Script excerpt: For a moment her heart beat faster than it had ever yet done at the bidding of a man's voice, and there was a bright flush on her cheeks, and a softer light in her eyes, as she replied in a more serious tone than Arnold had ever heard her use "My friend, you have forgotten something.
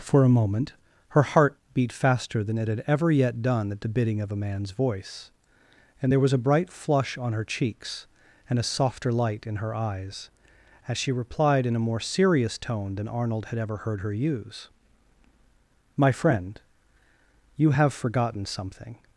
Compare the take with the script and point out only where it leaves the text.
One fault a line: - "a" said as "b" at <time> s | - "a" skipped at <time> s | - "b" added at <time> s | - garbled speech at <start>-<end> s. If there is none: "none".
none